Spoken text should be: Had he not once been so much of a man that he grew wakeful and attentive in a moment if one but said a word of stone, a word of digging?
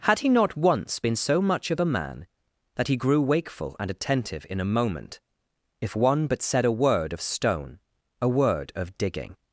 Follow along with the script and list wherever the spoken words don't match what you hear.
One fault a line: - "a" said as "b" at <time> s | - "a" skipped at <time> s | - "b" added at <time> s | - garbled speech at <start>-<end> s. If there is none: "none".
none